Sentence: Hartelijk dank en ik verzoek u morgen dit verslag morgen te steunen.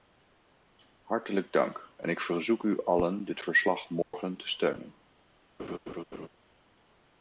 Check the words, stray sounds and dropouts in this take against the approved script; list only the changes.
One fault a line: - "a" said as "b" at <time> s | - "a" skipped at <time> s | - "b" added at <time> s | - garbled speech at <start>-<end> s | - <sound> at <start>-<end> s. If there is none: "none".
- "morgen" said as "allen" at 2.9 s
- dropout at 4.0-4.1 s
- laugh at 5.6-6.3 s